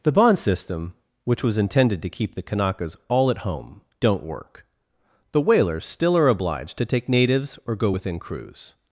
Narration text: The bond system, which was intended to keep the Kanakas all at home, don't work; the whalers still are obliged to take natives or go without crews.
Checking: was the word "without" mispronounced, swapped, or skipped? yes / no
yes